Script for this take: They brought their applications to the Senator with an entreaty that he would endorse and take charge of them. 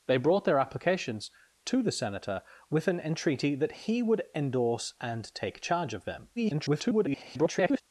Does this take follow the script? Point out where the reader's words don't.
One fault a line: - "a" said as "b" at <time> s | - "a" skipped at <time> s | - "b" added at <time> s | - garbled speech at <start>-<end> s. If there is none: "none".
- garbled speech at 6.4-7.8 s